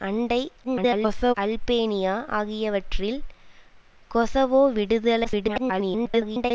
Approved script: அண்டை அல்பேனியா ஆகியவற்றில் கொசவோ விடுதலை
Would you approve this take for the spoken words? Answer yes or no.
no